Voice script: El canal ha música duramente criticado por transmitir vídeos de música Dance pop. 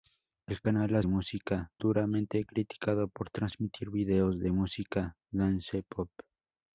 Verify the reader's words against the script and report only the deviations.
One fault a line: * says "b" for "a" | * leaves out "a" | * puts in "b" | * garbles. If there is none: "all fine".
all fine